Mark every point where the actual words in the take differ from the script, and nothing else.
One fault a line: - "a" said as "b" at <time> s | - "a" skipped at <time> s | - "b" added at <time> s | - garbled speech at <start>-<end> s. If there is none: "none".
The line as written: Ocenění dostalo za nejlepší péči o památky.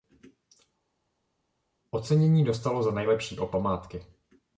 - "péči" skipped at 3.3 s